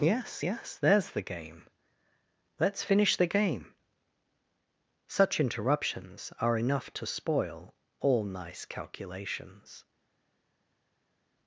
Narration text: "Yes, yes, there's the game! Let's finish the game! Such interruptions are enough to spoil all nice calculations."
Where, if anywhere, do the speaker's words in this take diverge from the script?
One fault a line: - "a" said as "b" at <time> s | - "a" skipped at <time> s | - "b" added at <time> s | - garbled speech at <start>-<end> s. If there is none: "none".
none